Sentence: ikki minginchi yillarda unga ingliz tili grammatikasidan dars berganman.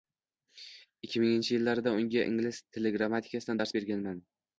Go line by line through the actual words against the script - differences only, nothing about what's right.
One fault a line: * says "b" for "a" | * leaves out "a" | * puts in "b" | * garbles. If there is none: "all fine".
all fine